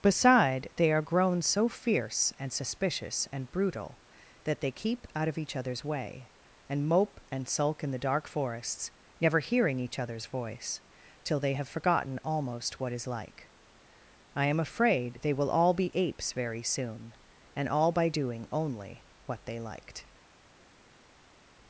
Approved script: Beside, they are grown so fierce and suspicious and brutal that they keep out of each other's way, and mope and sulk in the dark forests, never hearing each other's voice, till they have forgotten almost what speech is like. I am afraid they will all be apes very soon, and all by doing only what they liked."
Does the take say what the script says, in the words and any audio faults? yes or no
no